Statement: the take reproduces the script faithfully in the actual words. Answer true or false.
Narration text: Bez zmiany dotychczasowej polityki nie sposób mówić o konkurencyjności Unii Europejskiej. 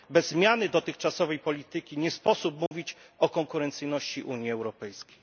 true